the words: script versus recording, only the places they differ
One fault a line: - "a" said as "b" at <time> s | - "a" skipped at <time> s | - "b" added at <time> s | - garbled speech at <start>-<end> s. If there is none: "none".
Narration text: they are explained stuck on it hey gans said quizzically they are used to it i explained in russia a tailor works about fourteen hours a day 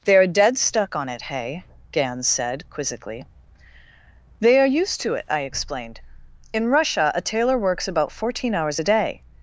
- "explained" said as "dead" at 0.2 s